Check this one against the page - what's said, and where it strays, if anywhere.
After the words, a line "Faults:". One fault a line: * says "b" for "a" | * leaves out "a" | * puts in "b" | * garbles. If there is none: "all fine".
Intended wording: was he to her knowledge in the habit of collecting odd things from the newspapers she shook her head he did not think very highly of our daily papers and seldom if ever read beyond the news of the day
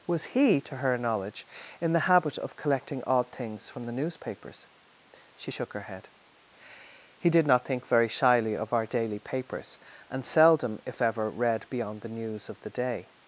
was he to her knowledge in the habit of collecting odd things from the newspapers she shook her head he did not think very shyly of our daily papers and seldom if ever read beyond the news of the day
Faults:
* says "shyly" for "highly"